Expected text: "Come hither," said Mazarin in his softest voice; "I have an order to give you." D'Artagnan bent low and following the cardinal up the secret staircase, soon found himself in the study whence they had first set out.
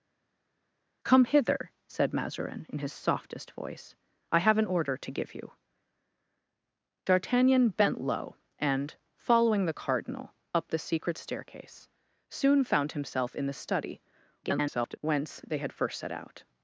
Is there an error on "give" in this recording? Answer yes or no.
no